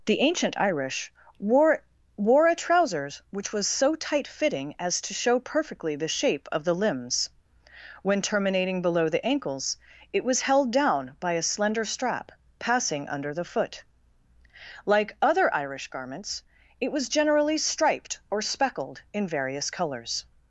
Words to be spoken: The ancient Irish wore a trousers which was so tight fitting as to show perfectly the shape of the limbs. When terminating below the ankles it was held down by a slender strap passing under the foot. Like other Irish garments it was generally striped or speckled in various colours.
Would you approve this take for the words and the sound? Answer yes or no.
no